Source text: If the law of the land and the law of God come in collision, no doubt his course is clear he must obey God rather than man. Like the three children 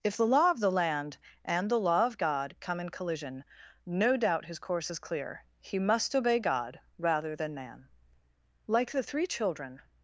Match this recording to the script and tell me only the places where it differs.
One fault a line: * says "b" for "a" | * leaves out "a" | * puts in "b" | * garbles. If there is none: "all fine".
all fine